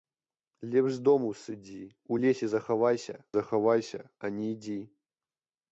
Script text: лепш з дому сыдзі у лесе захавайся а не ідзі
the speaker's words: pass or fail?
fail